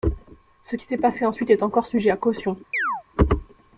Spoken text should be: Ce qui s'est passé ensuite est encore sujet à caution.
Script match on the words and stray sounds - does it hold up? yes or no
no